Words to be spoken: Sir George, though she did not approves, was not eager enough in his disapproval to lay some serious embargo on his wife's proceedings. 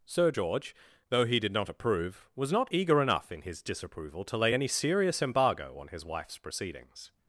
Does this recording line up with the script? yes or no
no